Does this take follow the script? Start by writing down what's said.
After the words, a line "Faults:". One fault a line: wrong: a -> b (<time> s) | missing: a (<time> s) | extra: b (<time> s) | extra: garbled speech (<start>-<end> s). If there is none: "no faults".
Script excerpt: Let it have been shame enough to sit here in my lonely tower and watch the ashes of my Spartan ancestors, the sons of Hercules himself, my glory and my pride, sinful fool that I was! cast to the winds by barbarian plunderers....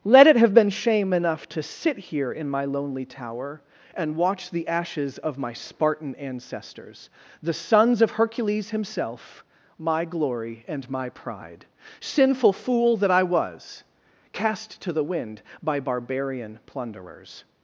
Let it have been shame enough to sit here in my lonely tower and watch the ashes of my Spartan ancestors, the sons of Hercules himself, my glory and my pride, sinful fool that I was! cast to the wind by barbarian plunderers....
Faults:
wrong: winds -> wind (15.0 s)